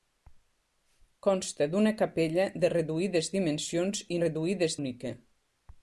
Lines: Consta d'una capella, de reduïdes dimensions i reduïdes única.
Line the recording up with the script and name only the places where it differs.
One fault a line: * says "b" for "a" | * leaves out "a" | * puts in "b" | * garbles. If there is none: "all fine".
all fine